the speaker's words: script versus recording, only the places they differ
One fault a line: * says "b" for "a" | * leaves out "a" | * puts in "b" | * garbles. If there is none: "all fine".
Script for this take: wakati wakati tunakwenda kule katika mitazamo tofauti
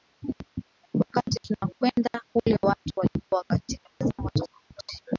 * leaves out "wakati"
* puts in "watu walikuwa"